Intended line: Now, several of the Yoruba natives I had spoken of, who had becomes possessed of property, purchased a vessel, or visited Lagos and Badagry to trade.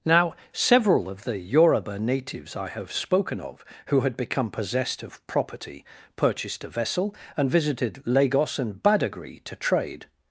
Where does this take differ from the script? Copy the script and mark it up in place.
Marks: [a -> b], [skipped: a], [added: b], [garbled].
Now, several of the Yoruba natives I [had -> have] spoken of, who had [becomes -> become] possessed of property, purchased a vessel, [or -> and] visited Lagos and Badagry to trade.